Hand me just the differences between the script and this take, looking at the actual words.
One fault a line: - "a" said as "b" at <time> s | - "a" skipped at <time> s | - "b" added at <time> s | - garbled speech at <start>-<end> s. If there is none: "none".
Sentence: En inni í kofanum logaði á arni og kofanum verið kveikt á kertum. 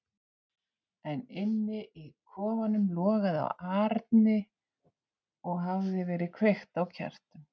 - "kofanum" said as "hafði" at 5.7 s